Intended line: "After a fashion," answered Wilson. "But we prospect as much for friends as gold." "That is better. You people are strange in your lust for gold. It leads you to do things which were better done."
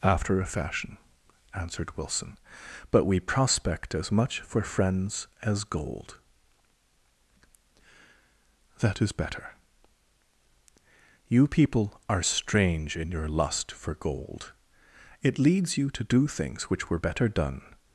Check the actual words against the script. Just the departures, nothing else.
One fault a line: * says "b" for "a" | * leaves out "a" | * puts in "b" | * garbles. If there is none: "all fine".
all fine